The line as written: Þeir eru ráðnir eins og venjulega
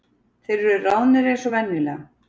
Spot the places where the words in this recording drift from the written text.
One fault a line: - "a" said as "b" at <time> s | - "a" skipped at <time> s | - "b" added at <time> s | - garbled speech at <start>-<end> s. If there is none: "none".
none